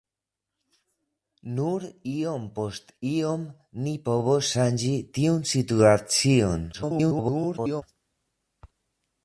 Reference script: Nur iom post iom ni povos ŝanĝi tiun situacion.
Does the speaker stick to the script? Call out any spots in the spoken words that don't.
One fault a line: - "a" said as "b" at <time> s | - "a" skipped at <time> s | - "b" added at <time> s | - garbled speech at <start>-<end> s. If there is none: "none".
- garbled speech at 6.7-7.8 s